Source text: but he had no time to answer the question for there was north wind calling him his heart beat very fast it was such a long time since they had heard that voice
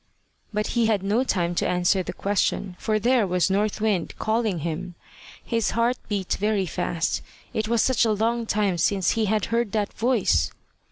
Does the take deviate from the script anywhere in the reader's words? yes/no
yes